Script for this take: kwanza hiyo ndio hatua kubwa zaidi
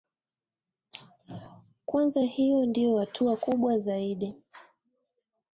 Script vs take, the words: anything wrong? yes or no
no